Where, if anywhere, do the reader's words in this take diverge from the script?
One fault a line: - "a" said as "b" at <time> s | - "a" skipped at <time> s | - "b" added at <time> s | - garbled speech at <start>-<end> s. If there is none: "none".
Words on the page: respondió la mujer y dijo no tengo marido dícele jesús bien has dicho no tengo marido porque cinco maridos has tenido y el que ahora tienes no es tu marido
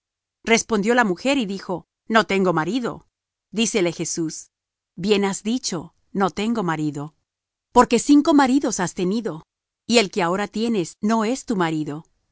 none